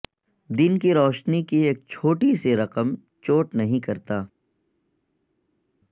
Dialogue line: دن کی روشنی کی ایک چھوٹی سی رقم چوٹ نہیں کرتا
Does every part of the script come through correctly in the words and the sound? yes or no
yes